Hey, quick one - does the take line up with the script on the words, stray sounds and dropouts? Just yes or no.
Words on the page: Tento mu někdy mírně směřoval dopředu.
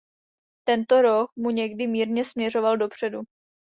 no